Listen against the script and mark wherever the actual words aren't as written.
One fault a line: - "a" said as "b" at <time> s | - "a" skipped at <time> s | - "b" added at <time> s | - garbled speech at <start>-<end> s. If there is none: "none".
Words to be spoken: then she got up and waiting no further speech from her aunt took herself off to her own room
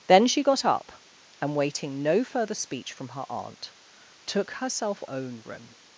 - "off to her" skipped at 5.0 s